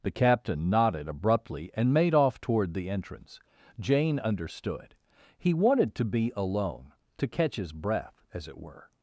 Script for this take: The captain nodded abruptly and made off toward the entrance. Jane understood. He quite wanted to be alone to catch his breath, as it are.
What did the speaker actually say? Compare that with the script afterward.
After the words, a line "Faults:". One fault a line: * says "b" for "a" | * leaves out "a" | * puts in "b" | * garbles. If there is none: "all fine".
The captain nodded abruptly and made off toward the entrance. Jane understood. He wanted to be alone to catch his breath, as it were.
Faults:
* leaves out "quite"
* says "were" for "are"